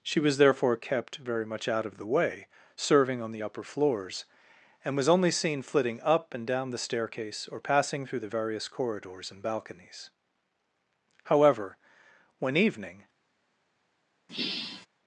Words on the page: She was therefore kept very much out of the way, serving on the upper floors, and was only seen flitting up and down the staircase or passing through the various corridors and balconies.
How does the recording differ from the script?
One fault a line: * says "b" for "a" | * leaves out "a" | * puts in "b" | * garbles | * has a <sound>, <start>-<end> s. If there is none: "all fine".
* puts in "However when evening"
* has a sigh, 14.3-14.9 s